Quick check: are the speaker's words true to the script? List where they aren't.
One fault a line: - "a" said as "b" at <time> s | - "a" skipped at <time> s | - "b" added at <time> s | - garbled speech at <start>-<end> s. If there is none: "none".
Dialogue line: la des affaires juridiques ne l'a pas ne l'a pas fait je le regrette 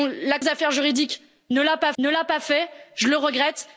none